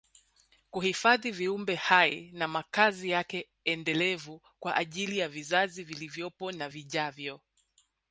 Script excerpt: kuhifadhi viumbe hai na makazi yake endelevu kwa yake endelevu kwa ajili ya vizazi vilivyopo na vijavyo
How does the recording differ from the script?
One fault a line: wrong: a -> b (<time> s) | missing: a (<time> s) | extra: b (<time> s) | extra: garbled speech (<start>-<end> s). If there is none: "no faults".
missing: yake endelevu kwa (4.8 s)